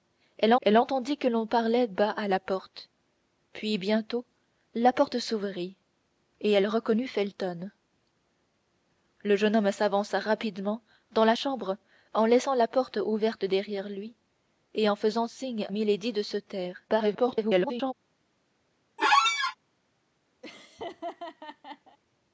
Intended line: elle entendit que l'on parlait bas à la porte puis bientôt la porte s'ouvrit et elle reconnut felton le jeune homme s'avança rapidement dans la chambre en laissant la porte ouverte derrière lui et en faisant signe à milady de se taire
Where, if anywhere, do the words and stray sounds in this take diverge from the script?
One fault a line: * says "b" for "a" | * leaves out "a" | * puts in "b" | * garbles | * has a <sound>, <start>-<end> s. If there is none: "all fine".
* puts in "elle"
* leaves out "à"
* garbles
* has a squeak, 19.0-19.6 s
* has a laugh, 20.4-22.0 s